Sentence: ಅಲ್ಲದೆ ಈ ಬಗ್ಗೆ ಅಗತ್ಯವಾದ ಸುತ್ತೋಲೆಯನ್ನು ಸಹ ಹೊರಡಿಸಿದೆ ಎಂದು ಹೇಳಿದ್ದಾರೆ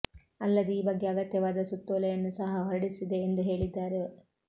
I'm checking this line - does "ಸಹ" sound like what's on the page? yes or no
yes